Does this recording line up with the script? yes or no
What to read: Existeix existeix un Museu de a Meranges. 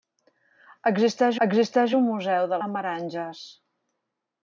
yes